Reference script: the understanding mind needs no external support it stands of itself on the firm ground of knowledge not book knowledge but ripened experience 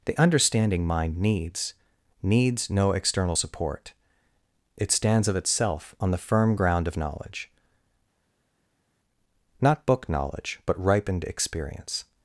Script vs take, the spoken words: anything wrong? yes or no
yes